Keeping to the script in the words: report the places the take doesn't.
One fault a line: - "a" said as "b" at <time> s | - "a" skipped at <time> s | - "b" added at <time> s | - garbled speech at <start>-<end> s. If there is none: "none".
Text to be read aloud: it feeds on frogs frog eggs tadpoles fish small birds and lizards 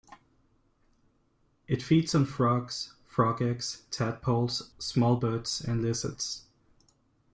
- "fish" skipped at 4.7 s